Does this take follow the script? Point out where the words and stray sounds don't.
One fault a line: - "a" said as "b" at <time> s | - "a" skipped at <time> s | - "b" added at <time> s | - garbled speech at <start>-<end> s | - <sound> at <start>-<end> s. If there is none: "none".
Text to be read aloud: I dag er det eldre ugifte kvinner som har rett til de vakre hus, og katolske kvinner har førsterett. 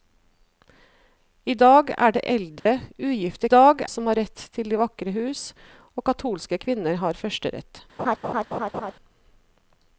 - dropout at 2.6-2.7 s
- "kvinner" said as "dag" at 3.5 s
- laugh at 8.0-8.9 s